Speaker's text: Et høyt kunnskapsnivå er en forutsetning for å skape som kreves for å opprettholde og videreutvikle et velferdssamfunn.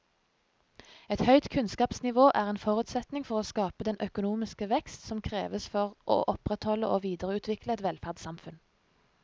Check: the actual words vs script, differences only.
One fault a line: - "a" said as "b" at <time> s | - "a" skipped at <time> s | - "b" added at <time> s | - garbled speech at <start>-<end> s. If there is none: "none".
- "den økonomiske vekst" added at 3.9 s